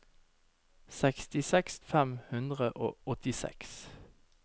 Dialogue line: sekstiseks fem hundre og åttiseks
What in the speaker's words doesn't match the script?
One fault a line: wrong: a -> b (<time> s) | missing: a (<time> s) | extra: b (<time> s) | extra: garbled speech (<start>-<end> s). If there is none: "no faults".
no faults